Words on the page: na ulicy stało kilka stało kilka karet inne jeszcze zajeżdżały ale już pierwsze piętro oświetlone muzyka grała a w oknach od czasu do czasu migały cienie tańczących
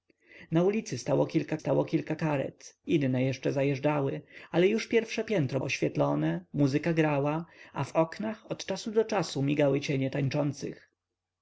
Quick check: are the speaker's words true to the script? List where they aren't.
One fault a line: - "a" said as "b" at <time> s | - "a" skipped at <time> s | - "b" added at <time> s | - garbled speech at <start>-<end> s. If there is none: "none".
none